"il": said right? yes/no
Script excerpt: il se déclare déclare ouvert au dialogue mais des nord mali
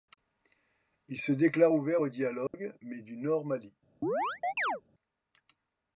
yes